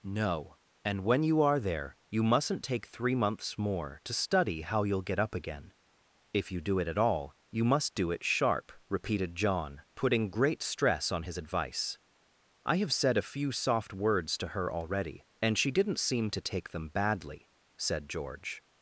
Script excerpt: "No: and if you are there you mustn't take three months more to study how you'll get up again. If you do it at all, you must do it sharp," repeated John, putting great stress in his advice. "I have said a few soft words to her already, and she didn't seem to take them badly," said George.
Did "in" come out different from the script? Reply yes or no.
yes